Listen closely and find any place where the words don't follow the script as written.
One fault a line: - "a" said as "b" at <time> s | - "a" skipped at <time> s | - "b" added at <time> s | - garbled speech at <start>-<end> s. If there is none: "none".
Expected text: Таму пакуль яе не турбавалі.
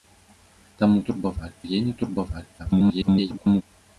- "пакуль" said as "турбавалі" at 1.1 s
- garbled speech at 2.6-3.6 s